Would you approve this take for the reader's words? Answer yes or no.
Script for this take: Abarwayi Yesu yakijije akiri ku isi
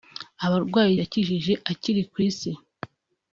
no